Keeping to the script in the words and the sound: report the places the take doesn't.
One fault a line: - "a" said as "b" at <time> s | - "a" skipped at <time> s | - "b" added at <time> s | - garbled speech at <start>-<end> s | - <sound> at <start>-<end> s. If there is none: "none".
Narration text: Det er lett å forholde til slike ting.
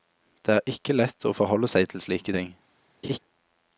- "ikke" added at 0.7 s
- "seg" added at 1.7 s
- laugh at 3.0-3.2 s